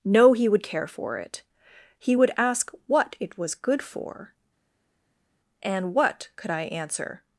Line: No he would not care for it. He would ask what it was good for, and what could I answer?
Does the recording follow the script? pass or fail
fail